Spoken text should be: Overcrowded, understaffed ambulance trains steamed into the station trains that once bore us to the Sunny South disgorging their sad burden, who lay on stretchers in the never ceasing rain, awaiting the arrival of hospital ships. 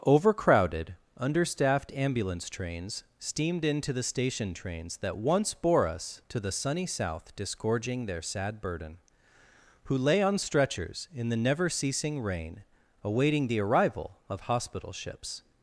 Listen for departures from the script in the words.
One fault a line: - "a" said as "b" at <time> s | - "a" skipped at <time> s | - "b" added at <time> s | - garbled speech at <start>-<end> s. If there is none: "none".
none